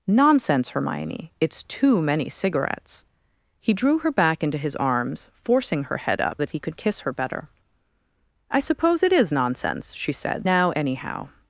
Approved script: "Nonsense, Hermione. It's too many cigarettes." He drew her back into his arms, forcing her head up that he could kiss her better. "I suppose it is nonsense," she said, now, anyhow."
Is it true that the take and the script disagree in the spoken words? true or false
false